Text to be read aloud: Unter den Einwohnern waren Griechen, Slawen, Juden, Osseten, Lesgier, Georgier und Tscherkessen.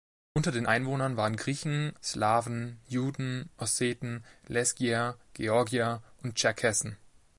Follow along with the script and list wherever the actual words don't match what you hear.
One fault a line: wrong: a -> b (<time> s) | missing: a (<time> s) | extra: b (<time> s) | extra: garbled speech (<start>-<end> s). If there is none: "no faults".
no faults